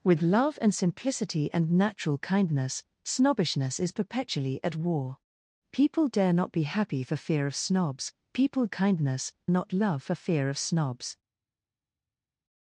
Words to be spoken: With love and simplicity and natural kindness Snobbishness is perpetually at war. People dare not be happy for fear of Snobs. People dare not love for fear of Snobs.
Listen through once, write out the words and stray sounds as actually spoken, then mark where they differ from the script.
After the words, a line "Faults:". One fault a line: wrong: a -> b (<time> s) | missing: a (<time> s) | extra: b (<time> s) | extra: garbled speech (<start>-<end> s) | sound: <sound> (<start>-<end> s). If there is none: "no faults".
With love and simplicity and natural kindness Snobbishness is perpetually at war. People dare not be happy for fear of Snobs. People kindness not love for fear of Snobs.
Faults:
wrong: dare -> kindness (8.7 s)